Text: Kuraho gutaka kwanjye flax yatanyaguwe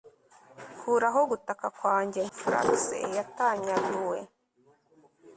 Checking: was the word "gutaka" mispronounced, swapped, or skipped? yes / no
no